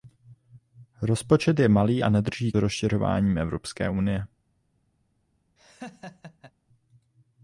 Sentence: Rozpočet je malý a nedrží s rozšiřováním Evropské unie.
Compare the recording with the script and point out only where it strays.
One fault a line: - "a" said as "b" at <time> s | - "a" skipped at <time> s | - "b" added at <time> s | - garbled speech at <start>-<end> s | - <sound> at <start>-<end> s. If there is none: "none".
- laugh at 5.6-6.5 s